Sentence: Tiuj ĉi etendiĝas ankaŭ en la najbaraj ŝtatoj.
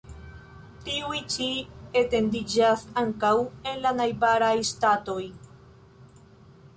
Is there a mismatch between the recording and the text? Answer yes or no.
no